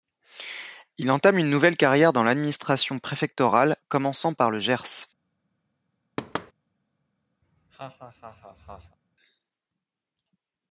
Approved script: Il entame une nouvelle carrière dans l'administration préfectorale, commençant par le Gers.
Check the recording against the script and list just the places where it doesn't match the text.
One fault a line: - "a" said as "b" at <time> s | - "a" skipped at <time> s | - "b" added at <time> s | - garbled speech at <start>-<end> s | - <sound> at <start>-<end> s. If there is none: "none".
- thud at 6.2-6.5 s
- laugh at 7.4-9.0 s